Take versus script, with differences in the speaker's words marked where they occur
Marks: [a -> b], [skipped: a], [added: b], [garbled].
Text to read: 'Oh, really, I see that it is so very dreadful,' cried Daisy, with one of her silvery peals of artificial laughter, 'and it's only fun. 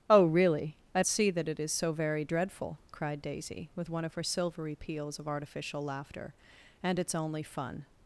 'Oh, really, I see that it is so very dreadful,' cried Daisy, with one of her silvery peals of artificial laughter, 'and it's only fun.